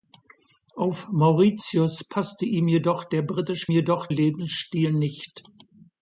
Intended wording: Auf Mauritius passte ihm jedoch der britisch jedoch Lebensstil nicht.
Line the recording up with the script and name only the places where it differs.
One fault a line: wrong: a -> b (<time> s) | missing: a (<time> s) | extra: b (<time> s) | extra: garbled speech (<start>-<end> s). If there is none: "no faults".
no faults